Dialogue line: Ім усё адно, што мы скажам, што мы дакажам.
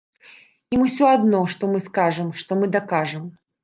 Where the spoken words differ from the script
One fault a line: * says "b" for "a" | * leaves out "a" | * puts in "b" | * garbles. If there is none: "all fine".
all fine